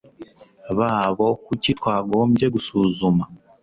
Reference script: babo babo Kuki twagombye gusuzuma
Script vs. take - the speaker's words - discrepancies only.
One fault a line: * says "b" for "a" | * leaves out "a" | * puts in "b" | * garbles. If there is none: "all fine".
* leaves out "babo"